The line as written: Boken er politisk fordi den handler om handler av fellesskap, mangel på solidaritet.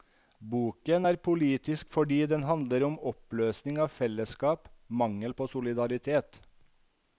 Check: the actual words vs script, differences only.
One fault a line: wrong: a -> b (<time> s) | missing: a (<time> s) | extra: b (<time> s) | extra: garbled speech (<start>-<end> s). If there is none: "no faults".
wrong: handler -> oppløsning (3.1 s)